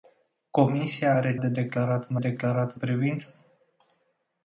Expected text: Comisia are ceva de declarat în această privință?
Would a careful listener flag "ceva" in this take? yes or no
yes